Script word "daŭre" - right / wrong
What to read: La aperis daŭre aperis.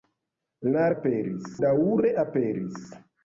right